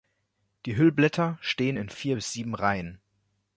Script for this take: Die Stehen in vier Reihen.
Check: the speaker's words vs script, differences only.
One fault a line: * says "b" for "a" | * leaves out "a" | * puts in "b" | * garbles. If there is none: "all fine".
* puts in "Hüllblätter"
* puts in "bis sieben"